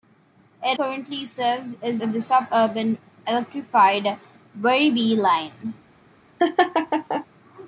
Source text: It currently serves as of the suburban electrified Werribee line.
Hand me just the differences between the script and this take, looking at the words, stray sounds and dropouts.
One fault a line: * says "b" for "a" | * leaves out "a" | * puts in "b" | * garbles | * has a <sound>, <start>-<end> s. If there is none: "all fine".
* has a laugh, 6.4-7.3 s